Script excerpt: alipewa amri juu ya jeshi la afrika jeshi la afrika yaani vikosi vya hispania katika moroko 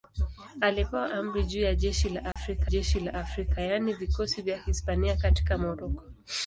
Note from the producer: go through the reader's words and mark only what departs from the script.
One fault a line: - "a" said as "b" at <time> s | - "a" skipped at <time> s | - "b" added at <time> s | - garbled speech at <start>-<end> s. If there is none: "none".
none